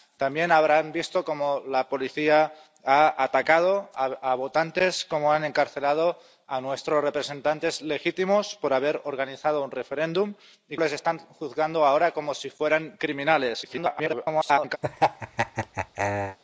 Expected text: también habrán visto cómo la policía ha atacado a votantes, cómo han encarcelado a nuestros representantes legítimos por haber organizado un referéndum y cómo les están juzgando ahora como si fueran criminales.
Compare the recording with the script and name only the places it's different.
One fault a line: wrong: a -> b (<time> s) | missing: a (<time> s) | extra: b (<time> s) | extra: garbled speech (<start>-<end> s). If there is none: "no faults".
missing: cómo (10.8 s)
extra: garbled speech (13.6-14.8 s)